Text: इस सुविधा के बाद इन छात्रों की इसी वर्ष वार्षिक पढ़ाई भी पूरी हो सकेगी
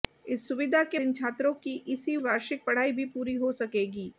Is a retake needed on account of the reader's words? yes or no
yes